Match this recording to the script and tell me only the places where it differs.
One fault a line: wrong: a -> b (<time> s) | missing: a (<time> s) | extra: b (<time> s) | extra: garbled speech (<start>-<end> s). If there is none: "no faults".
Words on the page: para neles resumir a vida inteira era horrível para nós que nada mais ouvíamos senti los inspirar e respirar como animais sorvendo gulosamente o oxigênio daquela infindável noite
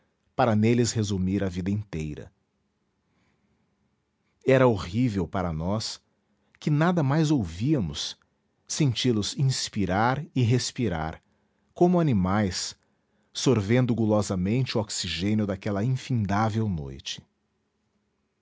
no faults